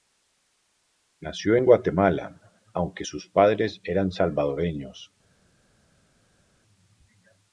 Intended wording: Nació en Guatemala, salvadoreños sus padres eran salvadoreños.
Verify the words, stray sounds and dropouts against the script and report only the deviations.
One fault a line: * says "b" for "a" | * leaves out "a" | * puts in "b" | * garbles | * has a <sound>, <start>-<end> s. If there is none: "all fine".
* says "aunque" for "salvadoreños"